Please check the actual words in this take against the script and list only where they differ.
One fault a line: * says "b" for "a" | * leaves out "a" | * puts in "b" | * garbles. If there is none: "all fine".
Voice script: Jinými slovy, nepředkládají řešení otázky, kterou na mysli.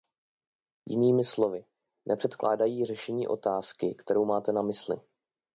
* puts in "máte"